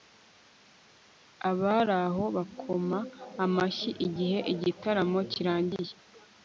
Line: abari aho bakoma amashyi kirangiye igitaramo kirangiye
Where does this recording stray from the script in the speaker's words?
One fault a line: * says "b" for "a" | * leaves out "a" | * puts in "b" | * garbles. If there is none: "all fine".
* says "igihe" for "kirangiye"